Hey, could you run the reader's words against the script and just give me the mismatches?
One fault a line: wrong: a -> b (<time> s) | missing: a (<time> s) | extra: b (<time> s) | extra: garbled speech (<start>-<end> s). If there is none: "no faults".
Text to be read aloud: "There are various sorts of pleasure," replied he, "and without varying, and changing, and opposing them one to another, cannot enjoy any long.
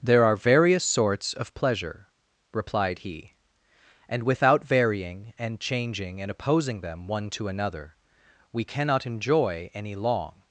extra: we (8.5 s)